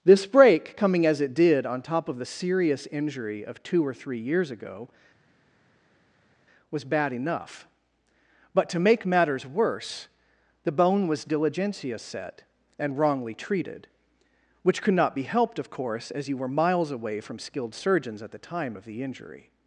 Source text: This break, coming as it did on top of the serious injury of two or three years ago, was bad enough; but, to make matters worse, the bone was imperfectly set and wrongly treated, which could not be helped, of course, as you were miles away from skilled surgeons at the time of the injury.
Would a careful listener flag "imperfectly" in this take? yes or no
yes